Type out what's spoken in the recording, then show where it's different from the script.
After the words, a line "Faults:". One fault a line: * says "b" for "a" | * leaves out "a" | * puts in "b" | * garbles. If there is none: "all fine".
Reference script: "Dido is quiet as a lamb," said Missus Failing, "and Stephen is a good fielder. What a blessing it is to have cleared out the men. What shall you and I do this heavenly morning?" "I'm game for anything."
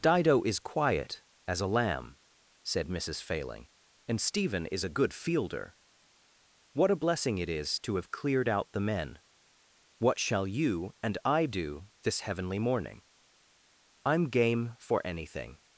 "Dido is quiet as a lamb," said Missus Failing, "and Stephen is a good fielder. What a blessing it is to have cleared out the men. What shall you and I do this heavenly morning?" "I'm game for anything."
Faults:
all fine